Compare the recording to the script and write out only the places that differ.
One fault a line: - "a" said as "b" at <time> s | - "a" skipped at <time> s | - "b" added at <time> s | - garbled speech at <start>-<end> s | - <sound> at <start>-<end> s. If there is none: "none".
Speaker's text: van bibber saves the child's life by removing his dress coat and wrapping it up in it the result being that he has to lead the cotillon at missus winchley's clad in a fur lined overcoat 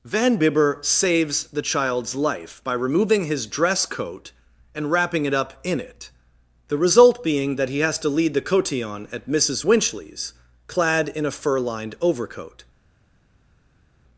none